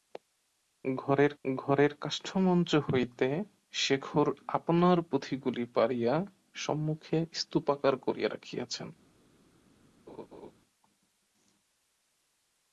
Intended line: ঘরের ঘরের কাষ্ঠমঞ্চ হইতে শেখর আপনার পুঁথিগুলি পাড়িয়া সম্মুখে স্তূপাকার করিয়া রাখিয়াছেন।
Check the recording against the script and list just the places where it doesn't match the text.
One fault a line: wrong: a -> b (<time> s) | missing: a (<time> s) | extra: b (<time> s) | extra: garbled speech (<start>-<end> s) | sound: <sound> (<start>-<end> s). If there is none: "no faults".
sound: laugh (10.1-10.5 s)